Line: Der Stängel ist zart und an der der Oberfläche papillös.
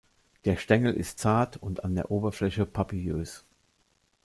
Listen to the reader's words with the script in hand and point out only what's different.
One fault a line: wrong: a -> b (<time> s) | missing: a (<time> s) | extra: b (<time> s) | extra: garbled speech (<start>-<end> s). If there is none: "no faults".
missing: der (2.1 s)